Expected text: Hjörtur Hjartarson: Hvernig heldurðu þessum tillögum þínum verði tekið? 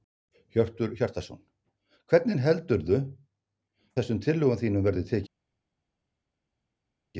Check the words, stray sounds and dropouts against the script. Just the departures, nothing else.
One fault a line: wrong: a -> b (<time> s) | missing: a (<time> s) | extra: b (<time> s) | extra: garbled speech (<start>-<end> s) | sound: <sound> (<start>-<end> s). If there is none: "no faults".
no faults